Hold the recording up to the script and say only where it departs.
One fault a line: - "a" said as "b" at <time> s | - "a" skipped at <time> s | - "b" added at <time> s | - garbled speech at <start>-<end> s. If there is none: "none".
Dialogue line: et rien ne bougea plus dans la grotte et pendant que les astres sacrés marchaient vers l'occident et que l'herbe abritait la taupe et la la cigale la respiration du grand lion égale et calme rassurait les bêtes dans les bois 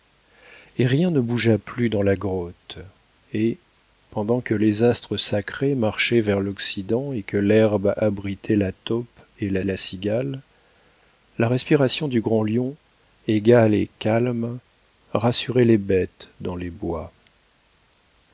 none